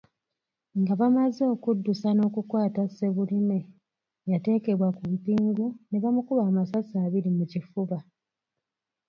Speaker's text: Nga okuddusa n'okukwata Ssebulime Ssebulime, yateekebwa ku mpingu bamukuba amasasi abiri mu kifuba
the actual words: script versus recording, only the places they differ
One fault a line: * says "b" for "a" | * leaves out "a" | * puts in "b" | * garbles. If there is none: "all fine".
* puts in "bamaze"
* leaves out "Ssebulime"
* puts in "ne"